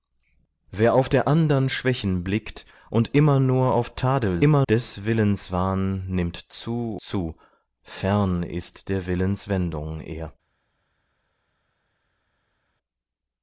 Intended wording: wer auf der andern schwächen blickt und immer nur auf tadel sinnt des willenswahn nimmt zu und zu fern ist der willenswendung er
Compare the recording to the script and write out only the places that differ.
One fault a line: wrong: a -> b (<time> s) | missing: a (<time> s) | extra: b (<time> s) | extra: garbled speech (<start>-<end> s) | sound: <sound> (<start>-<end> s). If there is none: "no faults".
wrong: sinnt -> immer (4.4 s)
missing: und (7.0 s)